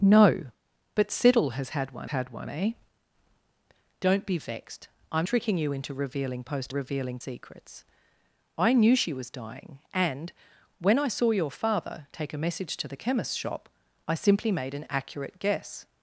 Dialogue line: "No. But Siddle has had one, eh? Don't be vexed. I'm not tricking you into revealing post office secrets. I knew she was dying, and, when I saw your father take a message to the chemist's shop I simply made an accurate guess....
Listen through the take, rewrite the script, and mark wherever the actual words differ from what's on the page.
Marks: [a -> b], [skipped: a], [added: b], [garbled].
"No. But Siddle has had one, [added: had one] eh? Don't be vexed. I'm [skipped: not] tricking you into revealing post [office -> revealing] secrets. I knew she was dying, and, when I saw your father take a message to the chemist's shop I simply made an accurate guess....